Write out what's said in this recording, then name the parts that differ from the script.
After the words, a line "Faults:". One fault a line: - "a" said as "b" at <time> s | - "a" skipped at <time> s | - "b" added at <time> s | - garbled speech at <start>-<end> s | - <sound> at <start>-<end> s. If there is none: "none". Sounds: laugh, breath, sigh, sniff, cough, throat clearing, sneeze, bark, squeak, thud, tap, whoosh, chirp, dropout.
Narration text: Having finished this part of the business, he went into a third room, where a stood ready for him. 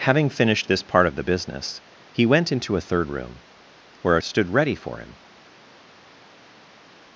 Having finished this part of the business, he went into a third room, where a stood ready for him.
Faults:
none